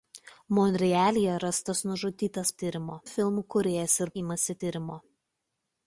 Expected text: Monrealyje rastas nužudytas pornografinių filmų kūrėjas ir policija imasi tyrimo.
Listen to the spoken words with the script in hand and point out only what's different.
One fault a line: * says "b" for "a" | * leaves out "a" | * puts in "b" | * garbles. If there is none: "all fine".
* says "tyrimo" for "pornografinių"
* leaves out "policija"